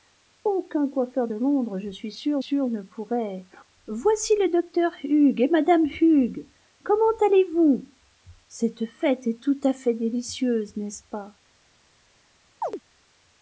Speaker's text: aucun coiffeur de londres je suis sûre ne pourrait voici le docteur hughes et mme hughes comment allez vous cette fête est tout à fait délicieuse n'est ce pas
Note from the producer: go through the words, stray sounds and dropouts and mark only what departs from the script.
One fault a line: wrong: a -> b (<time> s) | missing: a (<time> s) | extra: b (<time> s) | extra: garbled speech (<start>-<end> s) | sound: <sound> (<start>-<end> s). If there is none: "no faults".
extra: sûre (2.4 s)
sound: chirp (12.6-12.8 s)